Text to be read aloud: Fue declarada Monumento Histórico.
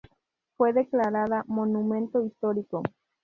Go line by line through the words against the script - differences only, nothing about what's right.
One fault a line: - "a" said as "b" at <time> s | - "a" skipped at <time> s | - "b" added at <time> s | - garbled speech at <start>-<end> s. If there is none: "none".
none